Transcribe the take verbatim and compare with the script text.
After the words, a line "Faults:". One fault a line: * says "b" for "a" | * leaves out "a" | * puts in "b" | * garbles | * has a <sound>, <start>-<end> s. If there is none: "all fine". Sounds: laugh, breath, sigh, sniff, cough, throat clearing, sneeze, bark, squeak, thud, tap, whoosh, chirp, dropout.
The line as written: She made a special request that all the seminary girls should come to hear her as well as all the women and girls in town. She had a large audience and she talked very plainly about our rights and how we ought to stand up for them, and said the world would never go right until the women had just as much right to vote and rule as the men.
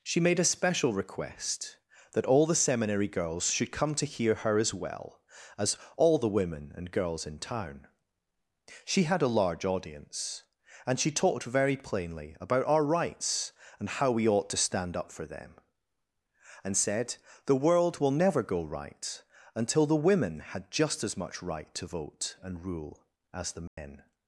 She made a special request that all the seminary girls should come to hear her as well as all the women and girls in town. She had a large audience and she talked very plainly about our rights and how we ought to stand up for them, and said the world will never go right until the women had just as much right to vote and rule as the men.
Faults:
* says "will" for "would"
* has a dropout, 23.7-23.8 s